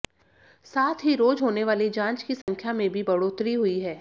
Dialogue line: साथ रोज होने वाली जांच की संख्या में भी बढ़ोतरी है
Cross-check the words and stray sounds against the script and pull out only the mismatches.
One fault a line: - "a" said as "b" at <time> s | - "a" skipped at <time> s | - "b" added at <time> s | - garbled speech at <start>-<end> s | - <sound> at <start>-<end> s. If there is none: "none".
- "ही" added at 1.0 s
- dropout at 2.4-2.5 s
- "हुई" added at 3.5 s